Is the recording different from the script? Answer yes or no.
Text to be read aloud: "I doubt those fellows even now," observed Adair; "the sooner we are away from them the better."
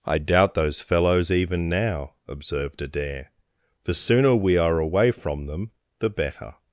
no